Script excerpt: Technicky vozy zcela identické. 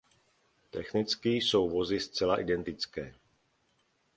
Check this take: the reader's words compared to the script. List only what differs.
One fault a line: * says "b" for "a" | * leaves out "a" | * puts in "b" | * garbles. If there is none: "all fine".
* puts in "jsou"